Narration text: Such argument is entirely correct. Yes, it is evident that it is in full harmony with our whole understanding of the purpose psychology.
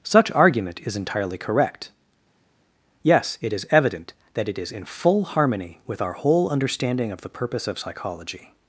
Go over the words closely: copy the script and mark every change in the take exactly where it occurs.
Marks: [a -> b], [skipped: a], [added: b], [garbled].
Such argument is entirely correct. Yes, it is evident that it is in full harmony with our whole understanding of the purpose [added: of] psychology.